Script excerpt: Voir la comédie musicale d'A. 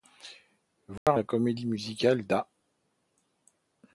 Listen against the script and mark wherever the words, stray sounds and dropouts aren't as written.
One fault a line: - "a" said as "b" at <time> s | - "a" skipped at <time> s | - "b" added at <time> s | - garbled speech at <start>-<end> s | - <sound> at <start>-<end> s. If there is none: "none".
- dropout at 1.0-1.1 s